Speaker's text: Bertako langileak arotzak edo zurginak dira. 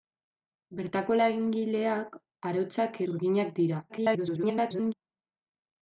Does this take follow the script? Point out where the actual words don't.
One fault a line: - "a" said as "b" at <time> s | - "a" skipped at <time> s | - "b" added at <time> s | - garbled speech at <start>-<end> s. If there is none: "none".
- "edo" skipped at 3.0 s
- garbled speech at 3.9-4.9 s